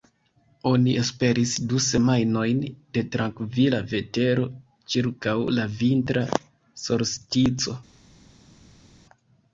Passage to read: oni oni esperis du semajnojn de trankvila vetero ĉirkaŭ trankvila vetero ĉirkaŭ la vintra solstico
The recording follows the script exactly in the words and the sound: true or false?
false